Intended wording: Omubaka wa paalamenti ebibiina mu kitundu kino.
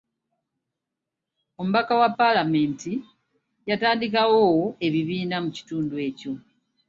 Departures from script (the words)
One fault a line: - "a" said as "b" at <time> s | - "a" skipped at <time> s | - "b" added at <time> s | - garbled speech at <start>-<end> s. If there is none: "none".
- "yatandikawo" added at 3.7 s
- "kino" said as "ekyo" at 6.1 s